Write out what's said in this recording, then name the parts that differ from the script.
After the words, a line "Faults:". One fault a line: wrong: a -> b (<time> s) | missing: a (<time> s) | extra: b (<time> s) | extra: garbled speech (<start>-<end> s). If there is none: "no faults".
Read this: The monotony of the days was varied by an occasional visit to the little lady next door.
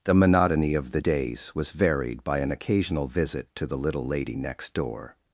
The monotony of the days was varied by an occasional visit to the little lady next door.
Faults:
no faults